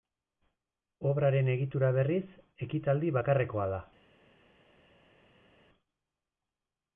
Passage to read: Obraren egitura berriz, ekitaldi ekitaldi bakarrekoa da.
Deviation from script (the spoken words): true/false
true